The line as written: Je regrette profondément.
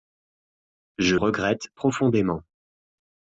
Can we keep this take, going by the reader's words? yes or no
yes